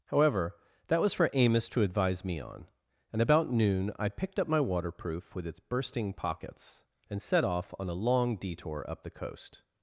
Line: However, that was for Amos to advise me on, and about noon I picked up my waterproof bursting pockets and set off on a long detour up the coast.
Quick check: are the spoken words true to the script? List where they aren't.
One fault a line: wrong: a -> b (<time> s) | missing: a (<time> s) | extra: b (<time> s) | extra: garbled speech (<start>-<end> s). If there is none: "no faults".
extra: with its (5.3 s)